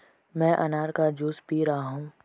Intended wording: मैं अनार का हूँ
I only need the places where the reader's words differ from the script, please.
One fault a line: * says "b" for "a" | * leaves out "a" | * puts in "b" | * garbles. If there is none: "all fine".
* puts in "जूस पी रहा"